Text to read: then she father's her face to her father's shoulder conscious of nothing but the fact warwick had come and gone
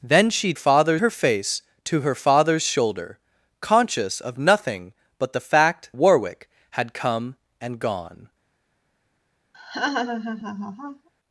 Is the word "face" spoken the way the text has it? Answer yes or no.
yes